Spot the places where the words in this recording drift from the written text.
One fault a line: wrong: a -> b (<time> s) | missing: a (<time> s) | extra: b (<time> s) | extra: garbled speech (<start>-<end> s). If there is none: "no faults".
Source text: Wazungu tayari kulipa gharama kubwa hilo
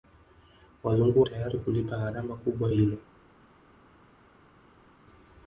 no faults